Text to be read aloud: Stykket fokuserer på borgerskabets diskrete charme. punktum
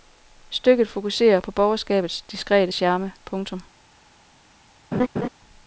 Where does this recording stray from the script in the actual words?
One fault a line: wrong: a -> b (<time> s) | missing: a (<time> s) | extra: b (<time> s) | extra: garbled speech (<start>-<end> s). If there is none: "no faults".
no faults